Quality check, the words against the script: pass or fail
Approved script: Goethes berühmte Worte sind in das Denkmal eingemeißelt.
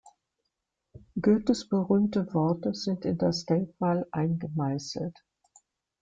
pass